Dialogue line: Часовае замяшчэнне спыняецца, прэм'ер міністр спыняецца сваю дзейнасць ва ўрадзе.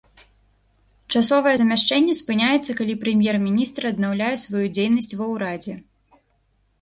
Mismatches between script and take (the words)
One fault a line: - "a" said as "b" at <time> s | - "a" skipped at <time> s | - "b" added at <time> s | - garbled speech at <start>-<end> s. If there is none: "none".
- "калі" added at 2.8 s
- "спыняецца" said as "аднаўляе" at 3.9 s